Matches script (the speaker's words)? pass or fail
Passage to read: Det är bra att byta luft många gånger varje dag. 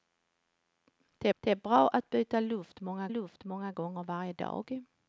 fail